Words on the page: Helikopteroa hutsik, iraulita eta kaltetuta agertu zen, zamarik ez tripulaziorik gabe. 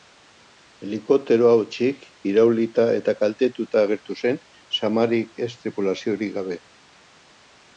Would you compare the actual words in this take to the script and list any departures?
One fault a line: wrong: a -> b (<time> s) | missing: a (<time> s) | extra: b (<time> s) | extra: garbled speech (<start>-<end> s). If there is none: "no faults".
no faults